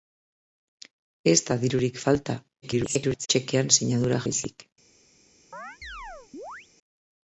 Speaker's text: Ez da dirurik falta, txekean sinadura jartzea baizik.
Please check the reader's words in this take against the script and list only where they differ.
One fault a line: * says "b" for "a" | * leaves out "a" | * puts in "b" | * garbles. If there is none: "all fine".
* garbles
* leaves out "jartzea"